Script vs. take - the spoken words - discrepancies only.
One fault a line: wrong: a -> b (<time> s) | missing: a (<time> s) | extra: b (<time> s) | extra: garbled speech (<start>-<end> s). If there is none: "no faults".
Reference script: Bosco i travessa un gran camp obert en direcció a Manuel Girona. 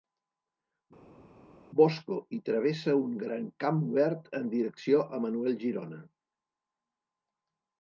no faults